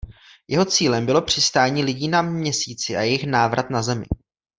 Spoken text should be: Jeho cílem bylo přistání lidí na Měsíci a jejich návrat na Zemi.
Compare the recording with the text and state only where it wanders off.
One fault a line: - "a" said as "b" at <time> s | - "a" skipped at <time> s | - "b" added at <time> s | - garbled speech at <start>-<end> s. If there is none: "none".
none